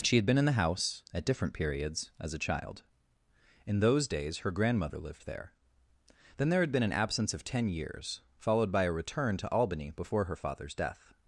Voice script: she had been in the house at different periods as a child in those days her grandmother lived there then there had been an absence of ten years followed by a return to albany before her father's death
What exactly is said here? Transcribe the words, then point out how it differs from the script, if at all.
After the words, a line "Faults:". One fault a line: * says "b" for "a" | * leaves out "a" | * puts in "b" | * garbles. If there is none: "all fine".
she had been in the house at different periods as a child in those days her grandmother lived there then there had been an absence of ten years followed by a return to albany before her father's death
Faults:
all fine